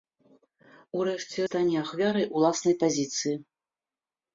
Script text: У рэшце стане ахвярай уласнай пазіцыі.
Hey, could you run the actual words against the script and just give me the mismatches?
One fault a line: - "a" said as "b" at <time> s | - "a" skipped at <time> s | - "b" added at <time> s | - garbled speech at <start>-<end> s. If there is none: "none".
none